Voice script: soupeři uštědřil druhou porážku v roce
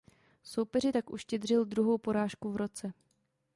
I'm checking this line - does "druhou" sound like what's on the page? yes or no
yes